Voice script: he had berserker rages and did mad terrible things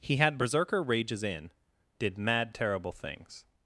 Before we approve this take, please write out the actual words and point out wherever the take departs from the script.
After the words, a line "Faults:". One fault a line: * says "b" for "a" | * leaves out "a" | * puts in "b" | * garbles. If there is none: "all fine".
he had berserker rages in did mad terrible things
Faults:
* says "in" for "and"